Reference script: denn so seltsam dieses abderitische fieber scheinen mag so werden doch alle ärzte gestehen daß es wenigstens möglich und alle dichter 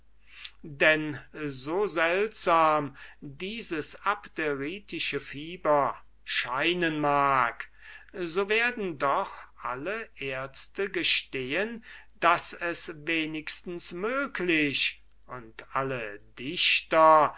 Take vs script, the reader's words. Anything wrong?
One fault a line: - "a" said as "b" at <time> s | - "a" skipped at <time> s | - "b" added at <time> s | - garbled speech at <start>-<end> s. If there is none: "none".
none